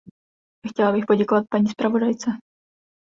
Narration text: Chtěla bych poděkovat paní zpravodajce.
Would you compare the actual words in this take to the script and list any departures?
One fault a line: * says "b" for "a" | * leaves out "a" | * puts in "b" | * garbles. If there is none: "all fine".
all fine